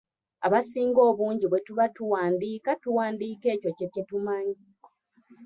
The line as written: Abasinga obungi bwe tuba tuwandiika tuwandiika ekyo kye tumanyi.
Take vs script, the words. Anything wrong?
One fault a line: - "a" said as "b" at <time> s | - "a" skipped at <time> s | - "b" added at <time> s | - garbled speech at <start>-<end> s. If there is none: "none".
- "kye" added at 3.9 s